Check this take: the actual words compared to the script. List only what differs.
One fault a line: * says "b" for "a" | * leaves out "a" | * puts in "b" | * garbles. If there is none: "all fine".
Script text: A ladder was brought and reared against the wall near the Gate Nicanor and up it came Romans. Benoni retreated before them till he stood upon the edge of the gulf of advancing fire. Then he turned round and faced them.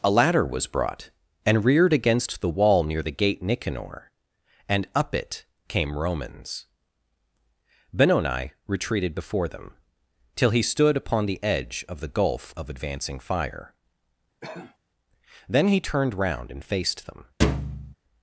all fine